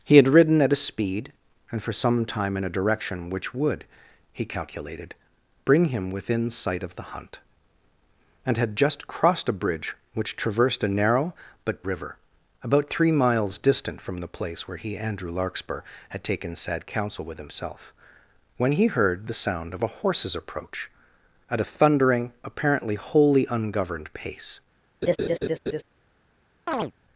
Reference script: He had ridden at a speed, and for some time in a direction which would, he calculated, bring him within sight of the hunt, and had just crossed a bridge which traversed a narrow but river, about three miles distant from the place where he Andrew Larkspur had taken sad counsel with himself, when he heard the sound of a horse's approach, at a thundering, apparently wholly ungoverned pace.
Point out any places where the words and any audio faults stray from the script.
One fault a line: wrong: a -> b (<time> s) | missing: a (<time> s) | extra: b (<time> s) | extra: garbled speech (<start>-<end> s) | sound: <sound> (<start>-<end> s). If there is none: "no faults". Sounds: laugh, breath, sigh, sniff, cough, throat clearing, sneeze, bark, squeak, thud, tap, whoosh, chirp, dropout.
sound: laugh (25.0-25.8 s)
sound: chirp (26.7-26.9 s)